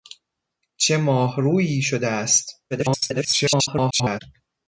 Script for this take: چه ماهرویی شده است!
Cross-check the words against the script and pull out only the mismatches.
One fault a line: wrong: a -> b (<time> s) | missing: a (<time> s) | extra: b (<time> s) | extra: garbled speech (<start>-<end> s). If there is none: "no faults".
extra: garbled speech (2.7-4.2 s)